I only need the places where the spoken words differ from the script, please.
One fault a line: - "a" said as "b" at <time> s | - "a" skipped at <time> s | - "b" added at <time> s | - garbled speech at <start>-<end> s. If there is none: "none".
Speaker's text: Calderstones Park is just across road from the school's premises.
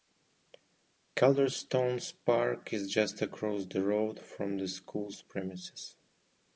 - "the" added at 3.7 s